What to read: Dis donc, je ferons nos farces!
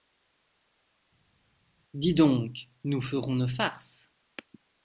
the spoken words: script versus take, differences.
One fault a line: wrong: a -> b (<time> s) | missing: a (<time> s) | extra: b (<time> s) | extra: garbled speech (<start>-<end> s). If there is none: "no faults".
wrong: je -> nous (2.8 s)